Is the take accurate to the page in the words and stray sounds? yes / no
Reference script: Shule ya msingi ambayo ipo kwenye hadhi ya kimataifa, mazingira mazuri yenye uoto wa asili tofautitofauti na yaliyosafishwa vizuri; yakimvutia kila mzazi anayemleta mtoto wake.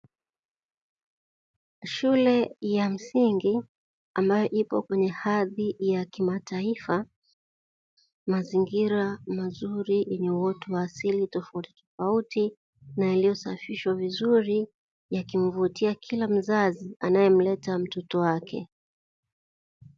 yes